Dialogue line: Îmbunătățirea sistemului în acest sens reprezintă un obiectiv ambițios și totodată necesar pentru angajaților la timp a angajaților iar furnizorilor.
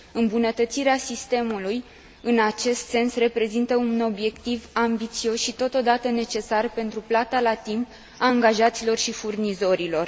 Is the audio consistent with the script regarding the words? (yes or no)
no